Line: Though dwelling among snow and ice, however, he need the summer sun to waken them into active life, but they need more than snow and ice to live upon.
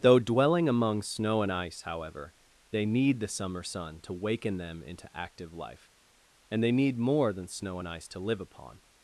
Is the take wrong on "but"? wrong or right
wrong